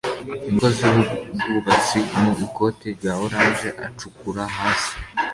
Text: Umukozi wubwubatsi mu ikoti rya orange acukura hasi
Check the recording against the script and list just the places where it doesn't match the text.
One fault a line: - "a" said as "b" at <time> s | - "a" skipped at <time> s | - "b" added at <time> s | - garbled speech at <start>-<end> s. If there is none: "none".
none